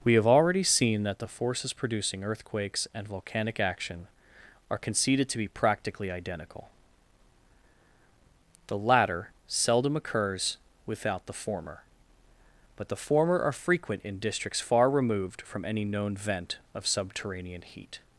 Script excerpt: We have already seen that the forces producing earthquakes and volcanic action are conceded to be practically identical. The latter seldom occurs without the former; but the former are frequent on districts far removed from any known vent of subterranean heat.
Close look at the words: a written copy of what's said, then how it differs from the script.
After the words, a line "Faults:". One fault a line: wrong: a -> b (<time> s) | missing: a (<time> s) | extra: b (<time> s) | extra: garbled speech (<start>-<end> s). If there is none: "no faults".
We have already seen that the forces producing earthquakes and volcanic action are conceded to be practically identical. The latter seldom occurs without the former; but the former are frequent in districts far removed from any known vent of subterranean heat.
Faults:
wrong: on -> in (14.0 s)